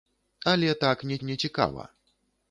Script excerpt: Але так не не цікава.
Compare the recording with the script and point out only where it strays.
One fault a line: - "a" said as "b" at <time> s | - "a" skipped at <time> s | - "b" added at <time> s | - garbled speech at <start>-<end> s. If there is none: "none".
none